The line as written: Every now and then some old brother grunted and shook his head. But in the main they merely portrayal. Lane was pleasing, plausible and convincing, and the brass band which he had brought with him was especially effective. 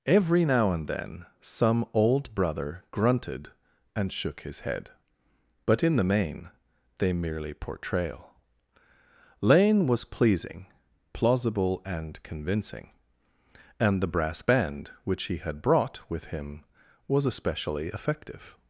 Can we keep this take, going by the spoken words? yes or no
yes